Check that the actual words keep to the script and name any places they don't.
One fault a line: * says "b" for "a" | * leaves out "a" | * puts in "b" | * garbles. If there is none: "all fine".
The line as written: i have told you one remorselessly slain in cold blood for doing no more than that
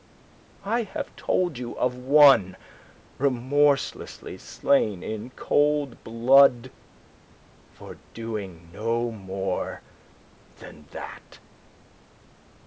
* puts in "of"